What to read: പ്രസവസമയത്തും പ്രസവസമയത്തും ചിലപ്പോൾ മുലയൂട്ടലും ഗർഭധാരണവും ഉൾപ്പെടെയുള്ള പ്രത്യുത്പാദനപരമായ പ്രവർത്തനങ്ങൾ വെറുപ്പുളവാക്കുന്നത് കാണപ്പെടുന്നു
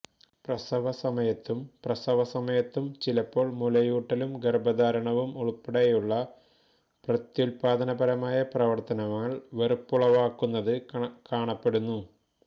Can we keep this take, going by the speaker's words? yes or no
yes